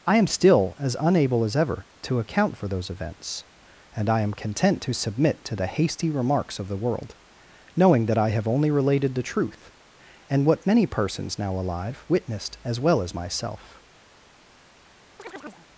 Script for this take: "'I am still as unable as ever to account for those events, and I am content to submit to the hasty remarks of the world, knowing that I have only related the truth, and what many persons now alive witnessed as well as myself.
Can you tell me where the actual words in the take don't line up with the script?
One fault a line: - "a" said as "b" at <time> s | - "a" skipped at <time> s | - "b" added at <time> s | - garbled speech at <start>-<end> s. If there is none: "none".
none